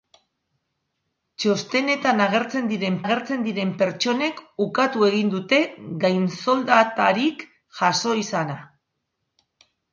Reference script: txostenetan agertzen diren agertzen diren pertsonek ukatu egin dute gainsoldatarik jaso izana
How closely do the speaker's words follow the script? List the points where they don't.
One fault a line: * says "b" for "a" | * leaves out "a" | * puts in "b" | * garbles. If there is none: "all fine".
all fine